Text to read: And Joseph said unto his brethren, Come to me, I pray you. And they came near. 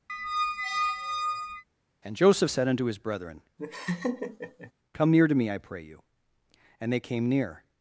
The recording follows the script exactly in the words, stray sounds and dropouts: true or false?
false